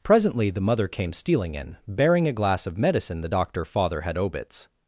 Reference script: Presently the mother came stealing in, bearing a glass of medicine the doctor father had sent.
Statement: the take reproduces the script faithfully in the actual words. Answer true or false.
false